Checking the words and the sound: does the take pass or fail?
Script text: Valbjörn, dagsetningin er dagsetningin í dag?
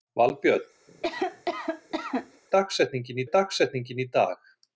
fail